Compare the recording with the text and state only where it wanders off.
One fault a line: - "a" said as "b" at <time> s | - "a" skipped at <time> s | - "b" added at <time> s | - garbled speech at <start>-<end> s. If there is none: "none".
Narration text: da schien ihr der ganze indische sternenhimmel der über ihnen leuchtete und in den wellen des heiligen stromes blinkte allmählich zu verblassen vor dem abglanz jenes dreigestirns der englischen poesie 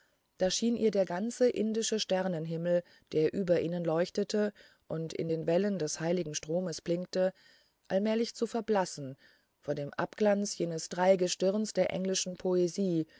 none